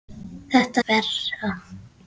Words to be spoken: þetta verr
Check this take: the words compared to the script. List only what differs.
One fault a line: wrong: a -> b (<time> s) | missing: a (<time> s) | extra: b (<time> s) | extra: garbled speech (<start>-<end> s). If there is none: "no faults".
no faults